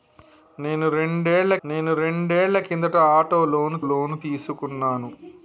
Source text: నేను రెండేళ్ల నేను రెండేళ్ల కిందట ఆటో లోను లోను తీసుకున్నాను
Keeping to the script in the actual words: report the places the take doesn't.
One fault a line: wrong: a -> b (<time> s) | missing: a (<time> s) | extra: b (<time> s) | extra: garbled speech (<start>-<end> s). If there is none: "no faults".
no faults